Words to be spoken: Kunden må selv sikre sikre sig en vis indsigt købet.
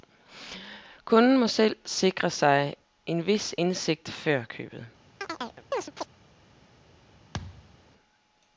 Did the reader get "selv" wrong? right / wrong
right